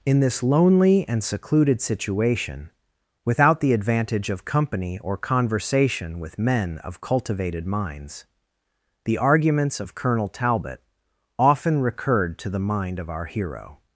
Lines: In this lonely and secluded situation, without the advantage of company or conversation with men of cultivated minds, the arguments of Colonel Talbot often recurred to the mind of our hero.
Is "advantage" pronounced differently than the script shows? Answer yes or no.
no